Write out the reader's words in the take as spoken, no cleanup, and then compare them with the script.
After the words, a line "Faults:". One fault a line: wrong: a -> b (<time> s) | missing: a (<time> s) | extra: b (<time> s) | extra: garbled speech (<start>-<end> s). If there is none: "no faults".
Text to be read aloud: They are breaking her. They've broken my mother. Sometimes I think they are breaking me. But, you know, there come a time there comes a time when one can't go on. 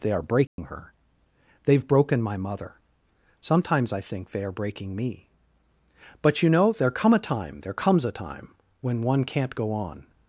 They are breaking her. They've broken my mother. Sometimes I think they are breaking me. But, you know, there come a time there comes a time when one can't go on.
Faults:
no faults